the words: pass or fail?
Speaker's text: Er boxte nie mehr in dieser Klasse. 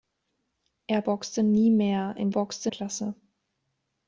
fail